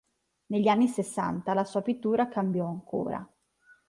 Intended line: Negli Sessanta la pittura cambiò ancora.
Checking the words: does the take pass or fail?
fail